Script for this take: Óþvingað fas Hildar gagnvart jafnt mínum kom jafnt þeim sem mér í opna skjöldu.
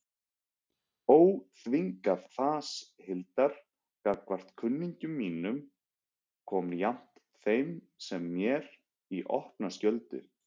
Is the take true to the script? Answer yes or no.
no